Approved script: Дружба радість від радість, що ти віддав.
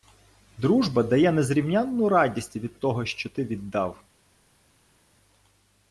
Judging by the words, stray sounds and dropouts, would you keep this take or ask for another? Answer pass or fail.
fail